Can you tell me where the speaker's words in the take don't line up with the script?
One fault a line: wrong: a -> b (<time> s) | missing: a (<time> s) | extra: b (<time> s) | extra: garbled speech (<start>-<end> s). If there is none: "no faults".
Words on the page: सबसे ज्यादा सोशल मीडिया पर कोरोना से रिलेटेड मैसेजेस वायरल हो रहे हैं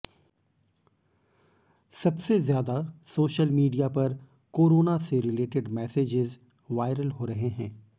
no faults